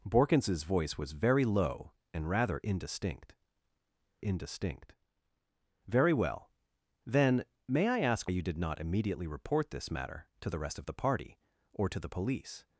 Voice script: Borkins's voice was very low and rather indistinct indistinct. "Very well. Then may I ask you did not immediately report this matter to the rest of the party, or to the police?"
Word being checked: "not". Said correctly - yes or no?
yes